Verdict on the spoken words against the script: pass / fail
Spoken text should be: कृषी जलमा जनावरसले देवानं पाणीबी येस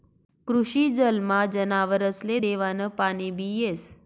pass